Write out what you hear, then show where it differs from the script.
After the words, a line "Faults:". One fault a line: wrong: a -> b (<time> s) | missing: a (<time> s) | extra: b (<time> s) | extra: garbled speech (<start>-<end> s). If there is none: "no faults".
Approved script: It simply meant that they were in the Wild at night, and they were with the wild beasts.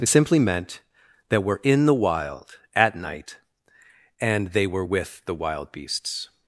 It simply meant that were in the Wild at night, and they were with the wild beasts.
Faults:
missing: they (1.4 s)